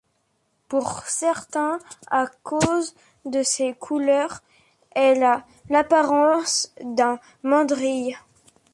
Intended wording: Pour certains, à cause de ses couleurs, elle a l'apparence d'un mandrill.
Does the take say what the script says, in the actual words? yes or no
yes